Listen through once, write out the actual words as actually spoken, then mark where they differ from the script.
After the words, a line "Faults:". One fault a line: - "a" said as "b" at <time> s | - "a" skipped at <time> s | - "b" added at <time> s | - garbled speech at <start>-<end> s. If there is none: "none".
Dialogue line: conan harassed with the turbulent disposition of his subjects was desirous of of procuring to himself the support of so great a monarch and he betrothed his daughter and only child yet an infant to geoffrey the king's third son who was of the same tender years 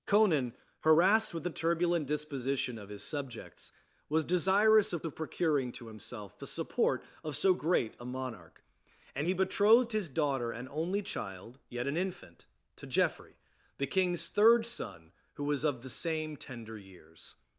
conan harassed with the turbulent disposition of his subjects was desirous of of procuring to himself the support of so great a monarch and he betrothed his daughter and only child yet an infant to geoffrey the king's third son who was of the same tender years
Faults:
none